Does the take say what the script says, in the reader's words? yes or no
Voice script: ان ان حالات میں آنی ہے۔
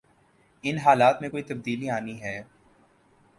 no